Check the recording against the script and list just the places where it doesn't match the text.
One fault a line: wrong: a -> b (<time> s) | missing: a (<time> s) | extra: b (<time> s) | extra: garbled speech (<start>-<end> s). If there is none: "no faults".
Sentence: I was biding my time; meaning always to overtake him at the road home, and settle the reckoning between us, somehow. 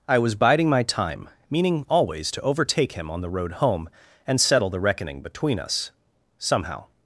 wrong: at -> on (3.1 s)